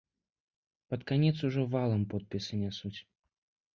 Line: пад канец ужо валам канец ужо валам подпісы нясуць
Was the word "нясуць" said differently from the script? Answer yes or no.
no